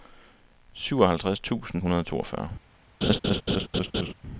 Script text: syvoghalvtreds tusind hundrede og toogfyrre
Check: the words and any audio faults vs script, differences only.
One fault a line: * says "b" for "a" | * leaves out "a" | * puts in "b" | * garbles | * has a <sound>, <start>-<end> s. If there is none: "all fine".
* has a laugh, 3.0-4.1 s